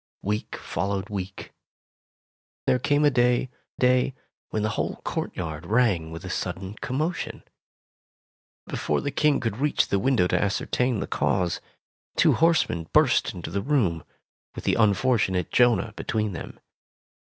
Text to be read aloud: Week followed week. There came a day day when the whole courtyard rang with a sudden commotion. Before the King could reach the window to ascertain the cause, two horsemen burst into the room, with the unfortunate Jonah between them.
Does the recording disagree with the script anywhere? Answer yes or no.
no